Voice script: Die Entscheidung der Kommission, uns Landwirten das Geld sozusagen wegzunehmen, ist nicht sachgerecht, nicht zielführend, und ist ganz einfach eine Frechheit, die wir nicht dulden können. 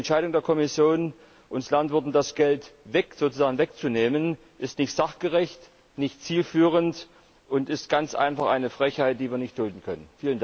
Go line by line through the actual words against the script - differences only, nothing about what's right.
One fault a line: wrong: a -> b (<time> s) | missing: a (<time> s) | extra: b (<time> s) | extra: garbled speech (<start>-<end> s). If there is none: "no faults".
no faults